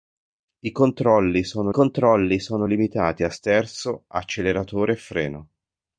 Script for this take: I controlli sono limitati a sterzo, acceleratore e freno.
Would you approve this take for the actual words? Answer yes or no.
no